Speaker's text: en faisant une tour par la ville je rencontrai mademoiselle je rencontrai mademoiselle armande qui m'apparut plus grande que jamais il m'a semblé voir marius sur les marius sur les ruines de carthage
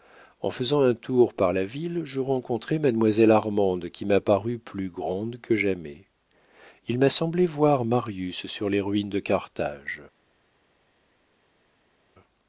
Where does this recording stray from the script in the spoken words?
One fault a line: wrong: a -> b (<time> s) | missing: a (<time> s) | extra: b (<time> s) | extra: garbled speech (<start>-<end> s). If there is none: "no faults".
wrong: une -> un (0.8 s)
missing: je rencontrai mademoiselle (3.3 s)
missing: marius sur les (8.8 s)